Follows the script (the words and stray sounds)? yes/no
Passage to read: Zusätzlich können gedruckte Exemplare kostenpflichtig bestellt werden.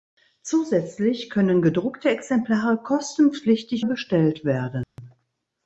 no